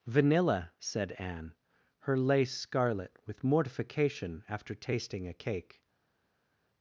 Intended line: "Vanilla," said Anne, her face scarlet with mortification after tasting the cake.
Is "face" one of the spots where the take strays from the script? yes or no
yes